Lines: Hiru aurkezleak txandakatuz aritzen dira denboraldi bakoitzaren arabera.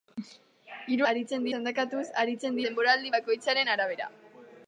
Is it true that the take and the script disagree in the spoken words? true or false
true